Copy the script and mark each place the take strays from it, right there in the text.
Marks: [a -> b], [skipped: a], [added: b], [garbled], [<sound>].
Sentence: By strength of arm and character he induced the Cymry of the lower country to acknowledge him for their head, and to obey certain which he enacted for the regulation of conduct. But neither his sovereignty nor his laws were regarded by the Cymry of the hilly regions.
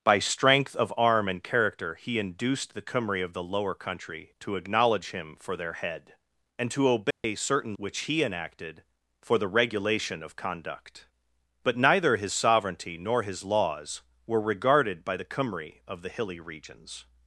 By strength of arm and character he induced the Cymry of the lower country to acknowledge him for their head, and to obey [dropout] certain which he enacted for the regulation of conduct. But neither his sovereignty nor his laws were regarded by the Cymry of the hilly regions.